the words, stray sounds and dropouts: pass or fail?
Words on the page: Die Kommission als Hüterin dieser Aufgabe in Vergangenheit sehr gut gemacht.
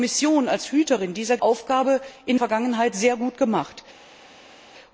pass